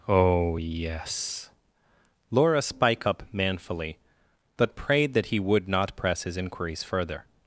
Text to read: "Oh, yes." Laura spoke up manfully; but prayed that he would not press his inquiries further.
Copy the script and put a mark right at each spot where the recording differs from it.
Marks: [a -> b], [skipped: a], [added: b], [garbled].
"Oh, yes." Laura [spoke -> spike] up manfully; but prayed that he would not press his inquiries further.